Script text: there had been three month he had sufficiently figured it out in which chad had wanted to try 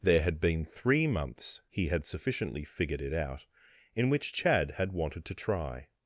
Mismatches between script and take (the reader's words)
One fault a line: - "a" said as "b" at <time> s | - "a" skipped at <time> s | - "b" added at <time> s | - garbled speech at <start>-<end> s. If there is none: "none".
- "month" said as "months" at 1.1 s